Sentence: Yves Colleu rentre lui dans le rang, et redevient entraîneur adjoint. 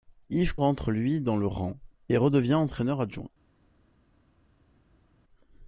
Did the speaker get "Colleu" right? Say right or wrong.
wrong